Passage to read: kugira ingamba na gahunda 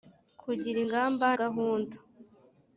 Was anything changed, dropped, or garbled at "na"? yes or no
yes